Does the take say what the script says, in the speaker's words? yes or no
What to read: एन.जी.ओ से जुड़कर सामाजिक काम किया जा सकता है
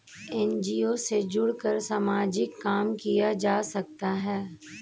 yes